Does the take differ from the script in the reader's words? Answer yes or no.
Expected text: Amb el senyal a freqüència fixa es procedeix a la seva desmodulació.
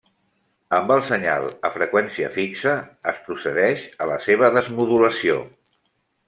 no